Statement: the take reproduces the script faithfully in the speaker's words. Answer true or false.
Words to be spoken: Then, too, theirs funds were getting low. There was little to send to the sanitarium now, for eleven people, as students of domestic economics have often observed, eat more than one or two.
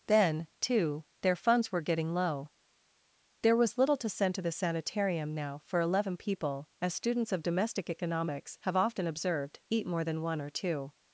false